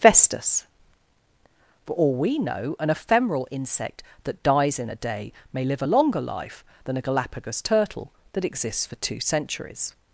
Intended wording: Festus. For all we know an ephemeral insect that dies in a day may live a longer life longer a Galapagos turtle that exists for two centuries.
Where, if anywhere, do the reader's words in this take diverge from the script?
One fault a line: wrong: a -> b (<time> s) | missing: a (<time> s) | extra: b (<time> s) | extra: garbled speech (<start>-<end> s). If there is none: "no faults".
wrong: longer -> than (6.8 s)